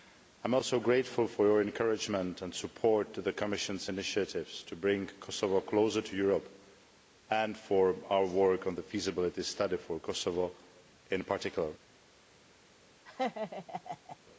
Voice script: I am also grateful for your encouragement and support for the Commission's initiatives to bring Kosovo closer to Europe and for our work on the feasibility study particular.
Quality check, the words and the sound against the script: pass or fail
fail